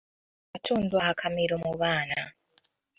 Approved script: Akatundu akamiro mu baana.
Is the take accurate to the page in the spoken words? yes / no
yes